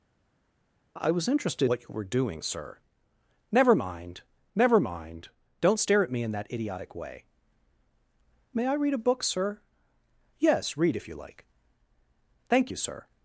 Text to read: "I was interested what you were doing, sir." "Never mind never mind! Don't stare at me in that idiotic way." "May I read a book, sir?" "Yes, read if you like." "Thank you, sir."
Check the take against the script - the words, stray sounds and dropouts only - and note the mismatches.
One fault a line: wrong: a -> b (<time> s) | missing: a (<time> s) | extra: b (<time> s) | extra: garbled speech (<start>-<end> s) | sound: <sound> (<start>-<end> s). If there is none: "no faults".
no faults